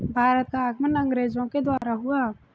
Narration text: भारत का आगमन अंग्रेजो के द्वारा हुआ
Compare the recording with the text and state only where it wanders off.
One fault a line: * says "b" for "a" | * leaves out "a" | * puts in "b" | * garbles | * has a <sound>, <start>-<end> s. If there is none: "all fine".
* has a dropout, 1.8-1.8 s